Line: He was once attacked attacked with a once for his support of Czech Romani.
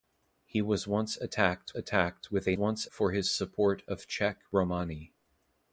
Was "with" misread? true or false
false